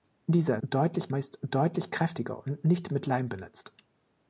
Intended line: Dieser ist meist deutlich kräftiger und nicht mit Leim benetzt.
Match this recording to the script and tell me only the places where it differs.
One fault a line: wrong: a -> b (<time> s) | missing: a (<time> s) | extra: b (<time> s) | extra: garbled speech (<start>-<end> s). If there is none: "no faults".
wrong: ist -> deutlich (0.6 s)